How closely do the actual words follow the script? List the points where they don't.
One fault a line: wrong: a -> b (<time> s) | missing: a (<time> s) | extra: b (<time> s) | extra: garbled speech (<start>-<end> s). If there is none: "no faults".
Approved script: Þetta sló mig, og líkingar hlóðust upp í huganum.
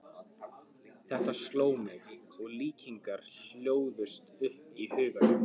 no faults